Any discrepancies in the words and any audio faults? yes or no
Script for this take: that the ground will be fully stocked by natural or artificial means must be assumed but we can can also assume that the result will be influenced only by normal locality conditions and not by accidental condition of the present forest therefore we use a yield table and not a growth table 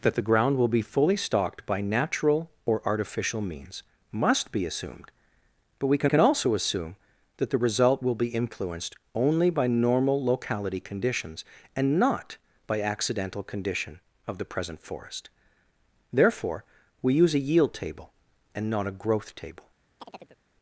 yes